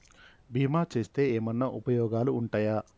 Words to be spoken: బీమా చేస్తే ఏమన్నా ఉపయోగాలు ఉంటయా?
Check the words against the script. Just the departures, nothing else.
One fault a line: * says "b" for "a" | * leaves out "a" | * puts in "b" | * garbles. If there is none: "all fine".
all fine